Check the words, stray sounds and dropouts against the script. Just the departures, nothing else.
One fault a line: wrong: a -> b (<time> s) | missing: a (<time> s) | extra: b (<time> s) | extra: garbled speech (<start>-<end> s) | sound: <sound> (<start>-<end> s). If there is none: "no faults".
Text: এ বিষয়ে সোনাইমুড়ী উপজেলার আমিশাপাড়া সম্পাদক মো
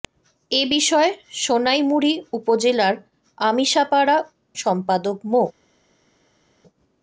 no faults